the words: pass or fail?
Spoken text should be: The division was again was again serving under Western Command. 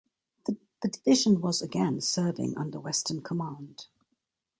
fail